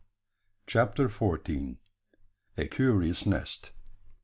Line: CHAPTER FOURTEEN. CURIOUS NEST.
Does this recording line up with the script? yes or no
no